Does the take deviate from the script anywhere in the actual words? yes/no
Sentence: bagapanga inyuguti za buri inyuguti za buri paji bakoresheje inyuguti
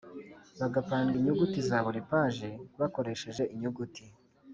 yes